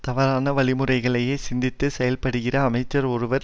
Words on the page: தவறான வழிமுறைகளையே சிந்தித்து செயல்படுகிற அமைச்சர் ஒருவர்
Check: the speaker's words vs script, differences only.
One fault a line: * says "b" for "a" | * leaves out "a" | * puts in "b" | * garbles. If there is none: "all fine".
all fine